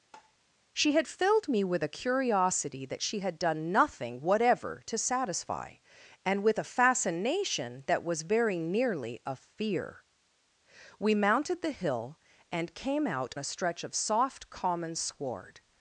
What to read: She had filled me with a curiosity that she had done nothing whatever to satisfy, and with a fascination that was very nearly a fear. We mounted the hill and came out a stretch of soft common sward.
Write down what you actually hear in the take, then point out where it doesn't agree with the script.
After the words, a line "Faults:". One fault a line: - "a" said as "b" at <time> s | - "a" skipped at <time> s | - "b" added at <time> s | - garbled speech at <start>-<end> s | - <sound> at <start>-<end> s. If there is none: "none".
She had filled me with a curiosity that she had done nothing whatever to satisfy, and with a fascination that was very nearly a fear. We mounted the hill and came out a stretch of soft common sward.
Faults:
- tap at 0.1-0.4 s